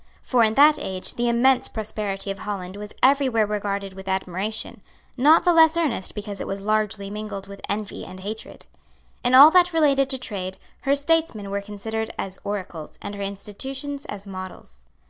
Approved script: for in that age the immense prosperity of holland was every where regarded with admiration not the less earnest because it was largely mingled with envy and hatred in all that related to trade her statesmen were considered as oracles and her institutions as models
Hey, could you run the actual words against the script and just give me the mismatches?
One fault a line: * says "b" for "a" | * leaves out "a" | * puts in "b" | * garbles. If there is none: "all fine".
all fine